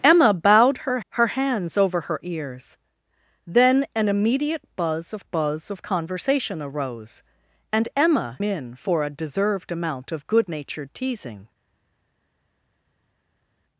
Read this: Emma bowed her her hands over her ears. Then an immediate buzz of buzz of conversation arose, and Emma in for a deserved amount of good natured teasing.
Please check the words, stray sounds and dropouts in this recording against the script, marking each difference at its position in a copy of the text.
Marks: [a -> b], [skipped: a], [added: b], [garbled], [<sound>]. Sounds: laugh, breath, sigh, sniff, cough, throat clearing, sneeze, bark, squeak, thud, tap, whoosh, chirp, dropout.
Emma bowed her her hands over her ears. Then an immediate buzz of buzz of conversation arose, and Emma in for a deserved amount of good natured teasing.